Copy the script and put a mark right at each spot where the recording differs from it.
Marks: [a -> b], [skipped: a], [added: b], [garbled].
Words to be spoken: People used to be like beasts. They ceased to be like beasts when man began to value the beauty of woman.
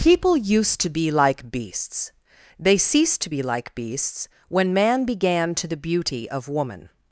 People used to be like beasts. They ceased to be like beasts when man began to [skipped: value] the beauty of woman.